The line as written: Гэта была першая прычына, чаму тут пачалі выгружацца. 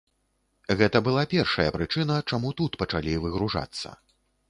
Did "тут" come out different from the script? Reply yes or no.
no